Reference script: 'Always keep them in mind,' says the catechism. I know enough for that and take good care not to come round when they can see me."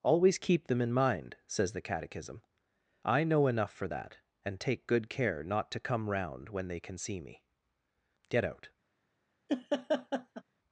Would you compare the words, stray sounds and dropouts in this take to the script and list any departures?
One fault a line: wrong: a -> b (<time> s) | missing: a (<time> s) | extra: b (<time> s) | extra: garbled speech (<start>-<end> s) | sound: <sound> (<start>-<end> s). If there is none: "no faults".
extra: Get out (8.3 s)
sound: laugh (9.5-10.4 s)